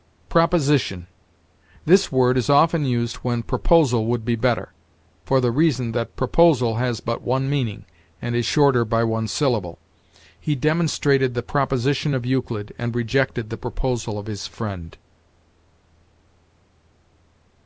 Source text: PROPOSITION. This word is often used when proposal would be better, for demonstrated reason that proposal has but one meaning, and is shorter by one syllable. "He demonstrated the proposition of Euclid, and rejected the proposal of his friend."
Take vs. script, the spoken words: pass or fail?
fail